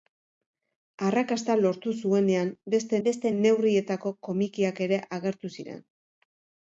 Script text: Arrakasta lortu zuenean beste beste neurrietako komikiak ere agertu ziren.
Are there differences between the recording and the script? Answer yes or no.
no